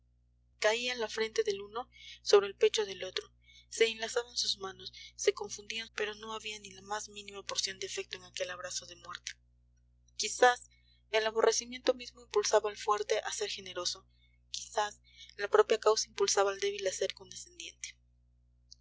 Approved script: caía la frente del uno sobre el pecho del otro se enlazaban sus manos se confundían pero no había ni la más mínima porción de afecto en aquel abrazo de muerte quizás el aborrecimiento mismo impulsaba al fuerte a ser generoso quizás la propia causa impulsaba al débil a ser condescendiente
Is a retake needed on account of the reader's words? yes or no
no